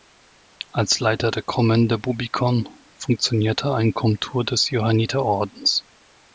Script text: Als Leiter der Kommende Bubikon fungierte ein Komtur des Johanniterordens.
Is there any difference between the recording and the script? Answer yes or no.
no